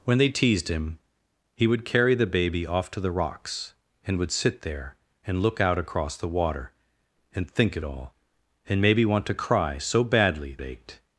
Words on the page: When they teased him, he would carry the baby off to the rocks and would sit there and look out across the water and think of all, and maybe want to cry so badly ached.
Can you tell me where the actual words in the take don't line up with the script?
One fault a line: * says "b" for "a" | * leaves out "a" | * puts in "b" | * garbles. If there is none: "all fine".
all fine